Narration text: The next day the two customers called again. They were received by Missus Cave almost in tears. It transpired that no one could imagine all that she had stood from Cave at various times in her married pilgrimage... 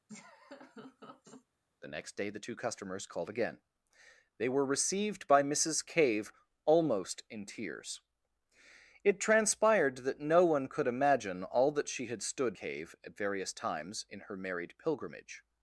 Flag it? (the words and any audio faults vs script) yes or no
yes